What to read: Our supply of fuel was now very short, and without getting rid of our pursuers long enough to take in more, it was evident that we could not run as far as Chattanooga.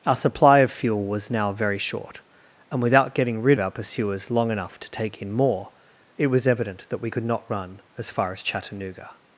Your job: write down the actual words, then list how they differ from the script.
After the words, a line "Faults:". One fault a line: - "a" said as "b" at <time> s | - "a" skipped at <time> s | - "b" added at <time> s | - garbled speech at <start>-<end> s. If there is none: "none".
Our supply of fuel was now very short, and without getting rid our pursuers long enough to take in more, it was evident that we could not run as far as Chattanooga.
Faults:
- "of" skipped at 3.6 s